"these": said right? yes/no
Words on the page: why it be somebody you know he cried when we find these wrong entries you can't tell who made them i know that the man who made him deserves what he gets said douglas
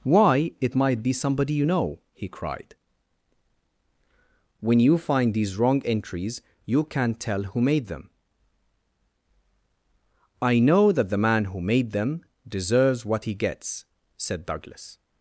yes